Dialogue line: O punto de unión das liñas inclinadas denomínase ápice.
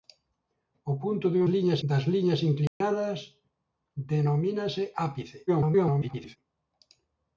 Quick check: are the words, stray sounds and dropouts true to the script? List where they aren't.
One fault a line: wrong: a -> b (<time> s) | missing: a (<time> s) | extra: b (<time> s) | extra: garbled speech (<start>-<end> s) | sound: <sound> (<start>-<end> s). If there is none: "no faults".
wrong: unión -> liñas (1.5 s)
sound: dropout (2.7-2.8 s)
extra: garbled speech (5.5-6.4 s)